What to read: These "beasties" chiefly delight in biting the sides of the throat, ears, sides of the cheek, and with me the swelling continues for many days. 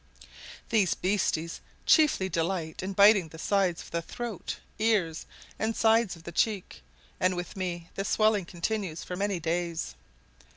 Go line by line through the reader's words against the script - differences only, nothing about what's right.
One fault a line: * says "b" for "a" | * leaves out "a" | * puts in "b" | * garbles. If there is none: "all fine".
* puts in "and"